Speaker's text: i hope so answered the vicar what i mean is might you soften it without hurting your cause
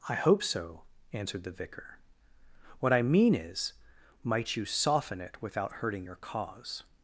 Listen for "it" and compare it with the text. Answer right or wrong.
right